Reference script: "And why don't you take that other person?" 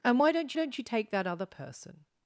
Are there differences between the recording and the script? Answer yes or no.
yes